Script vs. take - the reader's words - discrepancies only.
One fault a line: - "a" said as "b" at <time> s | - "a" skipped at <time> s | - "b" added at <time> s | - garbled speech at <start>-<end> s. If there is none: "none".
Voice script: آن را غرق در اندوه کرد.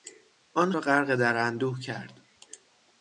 none